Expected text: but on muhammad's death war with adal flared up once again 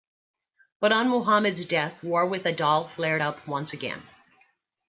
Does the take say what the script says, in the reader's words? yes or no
yes